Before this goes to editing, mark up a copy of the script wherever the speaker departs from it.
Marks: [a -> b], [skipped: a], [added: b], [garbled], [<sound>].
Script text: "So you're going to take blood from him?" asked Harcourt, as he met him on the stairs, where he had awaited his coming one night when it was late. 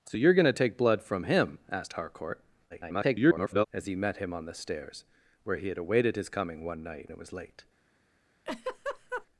"So you're going to take blood from him?" asked Harcourt, [garbled] as he met him on the stairs, where he had awaited his coming one night [skipped: when] it was late. [laugh]